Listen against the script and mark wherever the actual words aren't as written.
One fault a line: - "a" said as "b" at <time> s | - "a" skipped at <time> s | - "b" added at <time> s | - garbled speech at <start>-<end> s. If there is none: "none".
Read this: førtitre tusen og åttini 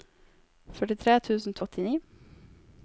none